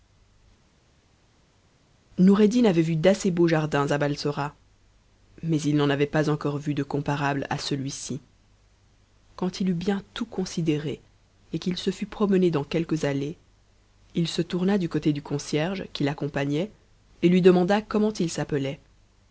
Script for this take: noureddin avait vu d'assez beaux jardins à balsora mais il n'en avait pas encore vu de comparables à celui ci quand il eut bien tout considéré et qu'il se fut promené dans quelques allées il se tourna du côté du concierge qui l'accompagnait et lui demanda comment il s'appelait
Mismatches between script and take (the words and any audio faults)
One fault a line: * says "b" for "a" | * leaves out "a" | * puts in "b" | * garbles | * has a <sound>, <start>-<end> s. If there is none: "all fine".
all fine